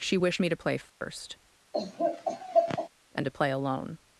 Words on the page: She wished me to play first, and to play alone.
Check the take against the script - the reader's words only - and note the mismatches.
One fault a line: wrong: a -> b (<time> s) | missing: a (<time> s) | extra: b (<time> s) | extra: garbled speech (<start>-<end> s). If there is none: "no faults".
no faults